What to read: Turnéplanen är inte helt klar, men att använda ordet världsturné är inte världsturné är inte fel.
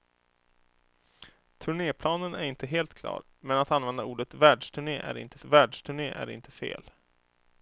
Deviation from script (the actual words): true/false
false